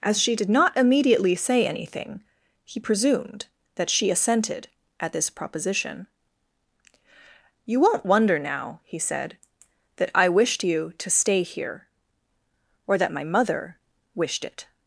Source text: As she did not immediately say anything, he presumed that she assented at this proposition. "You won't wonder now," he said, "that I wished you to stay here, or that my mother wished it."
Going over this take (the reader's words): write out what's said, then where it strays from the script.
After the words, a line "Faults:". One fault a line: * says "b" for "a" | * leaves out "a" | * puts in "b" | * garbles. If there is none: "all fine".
As she did not immediately say anything, he presumed that she assented at this proposition. "You won't wonder now," he said, "that I wished you to stay here, or that my mother wished it."
Faults:
all fine